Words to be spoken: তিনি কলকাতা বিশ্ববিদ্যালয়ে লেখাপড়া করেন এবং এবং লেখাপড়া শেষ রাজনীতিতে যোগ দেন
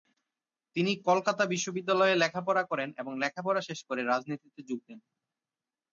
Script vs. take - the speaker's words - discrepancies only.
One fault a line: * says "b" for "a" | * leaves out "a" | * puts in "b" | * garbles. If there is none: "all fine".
* leaves out "এবং"
* puts in "করে"